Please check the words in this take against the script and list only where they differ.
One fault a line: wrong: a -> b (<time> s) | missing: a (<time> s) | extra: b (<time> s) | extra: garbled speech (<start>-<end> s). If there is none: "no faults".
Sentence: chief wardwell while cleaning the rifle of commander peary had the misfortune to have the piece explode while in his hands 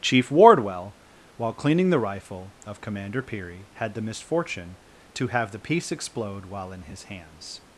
no faults